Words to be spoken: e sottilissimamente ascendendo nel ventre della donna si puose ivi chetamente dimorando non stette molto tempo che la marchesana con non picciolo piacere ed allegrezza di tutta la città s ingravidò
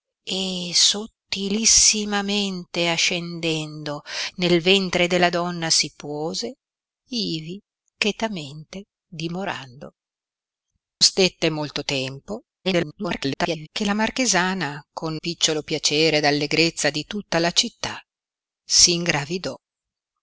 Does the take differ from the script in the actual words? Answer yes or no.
yes